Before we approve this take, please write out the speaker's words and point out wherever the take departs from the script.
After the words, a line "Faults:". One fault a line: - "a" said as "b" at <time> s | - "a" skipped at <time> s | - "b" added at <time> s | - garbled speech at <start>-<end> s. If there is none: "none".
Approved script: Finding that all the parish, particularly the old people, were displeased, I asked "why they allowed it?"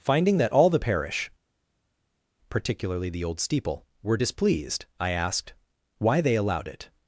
Finding that all the parish, particularly the old steeple, were displeased, I asked "why they allowed it?"
Faults:
- "people" said as "steeple" at 3.4 s